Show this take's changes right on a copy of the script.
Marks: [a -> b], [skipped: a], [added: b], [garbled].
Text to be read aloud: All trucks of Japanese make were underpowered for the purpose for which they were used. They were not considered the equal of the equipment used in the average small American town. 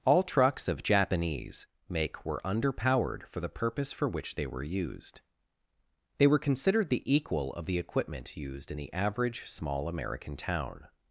All trucks of Japanese make were underpowered for the purpose for which they were used. They were [skipped: not] considered the equal of the equipment used in the average small American town.